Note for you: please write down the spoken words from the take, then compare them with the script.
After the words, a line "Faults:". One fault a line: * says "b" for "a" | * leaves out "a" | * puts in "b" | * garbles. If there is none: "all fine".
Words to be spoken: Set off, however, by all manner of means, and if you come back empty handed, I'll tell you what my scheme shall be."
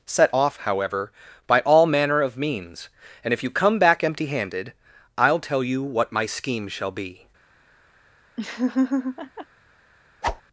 Set off, however, by all manner of means, and if you come back empty handed, I'll tell you what my scheme shall be."
Faults:
all fine